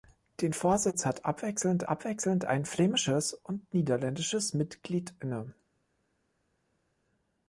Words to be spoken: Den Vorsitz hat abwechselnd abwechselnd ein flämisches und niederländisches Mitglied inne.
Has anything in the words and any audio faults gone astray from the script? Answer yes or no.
no